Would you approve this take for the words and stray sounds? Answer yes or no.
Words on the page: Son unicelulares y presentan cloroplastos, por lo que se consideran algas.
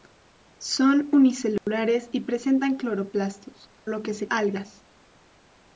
no